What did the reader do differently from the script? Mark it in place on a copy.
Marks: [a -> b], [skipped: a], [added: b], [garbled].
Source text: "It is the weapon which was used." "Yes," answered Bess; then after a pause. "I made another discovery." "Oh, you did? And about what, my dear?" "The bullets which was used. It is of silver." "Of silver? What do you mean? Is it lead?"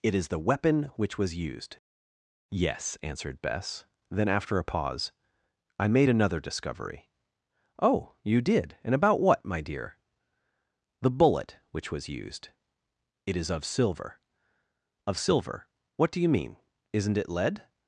"It is the weapon which was used." "Yes," answered Bess; then after a pause. "I made another discovery." "Oh, you did? And about what, my dear?" "The [bullets -> bullet] which was used. It is of silver." "Of silver? What do you mean? [Is -> Isn't] it lead?"